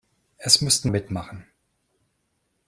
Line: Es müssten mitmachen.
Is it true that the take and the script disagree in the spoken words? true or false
false